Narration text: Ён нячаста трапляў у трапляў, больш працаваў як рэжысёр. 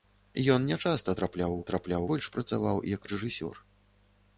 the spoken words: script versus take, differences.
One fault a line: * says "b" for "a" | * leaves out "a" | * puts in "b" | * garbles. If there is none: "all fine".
all fine